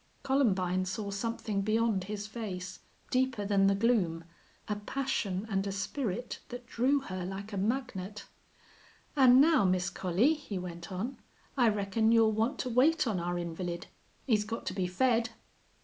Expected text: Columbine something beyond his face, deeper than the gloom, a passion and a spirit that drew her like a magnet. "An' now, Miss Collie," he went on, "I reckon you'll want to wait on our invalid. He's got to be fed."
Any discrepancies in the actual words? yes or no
yes